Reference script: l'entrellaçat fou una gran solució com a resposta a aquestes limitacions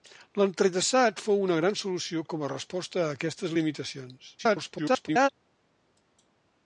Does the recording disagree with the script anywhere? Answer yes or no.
yes